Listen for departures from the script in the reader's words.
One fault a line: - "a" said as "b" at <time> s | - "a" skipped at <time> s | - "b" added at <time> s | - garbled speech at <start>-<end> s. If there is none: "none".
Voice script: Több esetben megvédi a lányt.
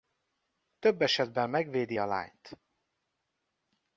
none